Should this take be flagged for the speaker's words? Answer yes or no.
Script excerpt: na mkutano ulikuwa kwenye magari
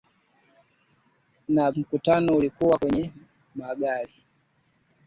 no